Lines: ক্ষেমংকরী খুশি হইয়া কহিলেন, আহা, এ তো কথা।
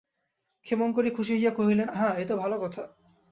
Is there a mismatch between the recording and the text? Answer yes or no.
yes